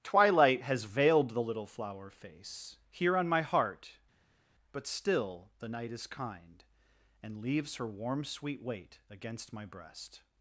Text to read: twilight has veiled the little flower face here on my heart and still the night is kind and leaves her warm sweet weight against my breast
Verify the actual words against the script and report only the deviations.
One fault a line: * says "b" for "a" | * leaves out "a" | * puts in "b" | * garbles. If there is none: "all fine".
* says "but" for "and"